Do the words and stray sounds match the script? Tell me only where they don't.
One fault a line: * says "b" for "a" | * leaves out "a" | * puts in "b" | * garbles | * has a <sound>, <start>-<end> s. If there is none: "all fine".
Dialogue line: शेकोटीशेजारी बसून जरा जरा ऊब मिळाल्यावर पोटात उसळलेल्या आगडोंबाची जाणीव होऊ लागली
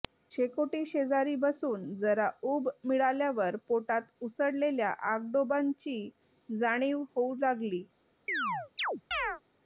* leaves out "जरा"
* has a chirp, 8.3-9.4 s